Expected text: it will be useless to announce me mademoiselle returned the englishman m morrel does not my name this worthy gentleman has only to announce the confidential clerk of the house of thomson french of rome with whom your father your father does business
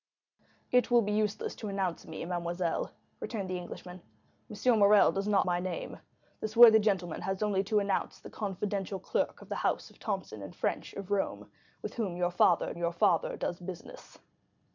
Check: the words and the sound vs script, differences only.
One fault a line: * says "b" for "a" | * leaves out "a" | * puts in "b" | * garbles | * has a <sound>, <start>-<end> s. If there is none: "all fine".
all fine